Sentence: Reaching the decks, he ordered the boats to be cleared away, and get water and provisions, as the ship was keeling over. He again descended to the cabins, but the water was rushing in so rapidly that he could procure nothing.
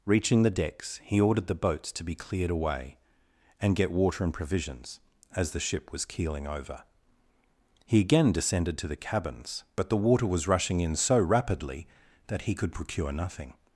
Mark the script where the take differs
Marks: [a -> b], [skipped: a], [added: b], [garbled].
Reaching the decks, he ordered the boats to be cleared away, and get water and provisions, as the ship was keeling over. He again descended to the cabins, but the water was rushing in so rapidly that he could procure nothing.